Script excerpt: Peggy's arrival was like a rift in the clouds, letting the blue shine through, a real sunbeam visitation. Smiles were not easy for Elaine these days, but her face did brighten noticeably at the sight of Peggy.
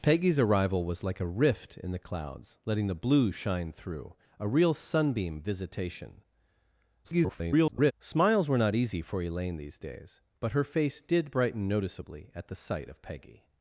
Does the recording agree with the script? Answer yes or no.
no